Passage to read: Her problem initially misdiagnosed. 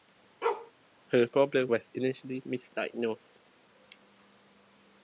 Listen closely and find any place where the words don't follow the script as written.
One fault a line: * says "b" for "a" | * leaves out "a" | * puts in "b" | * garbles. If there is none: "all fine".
* puts in "was"